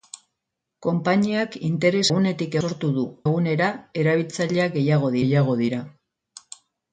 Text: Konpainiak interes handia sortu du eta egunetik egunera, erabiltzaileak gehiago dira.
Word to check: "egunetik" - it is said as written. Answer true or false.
false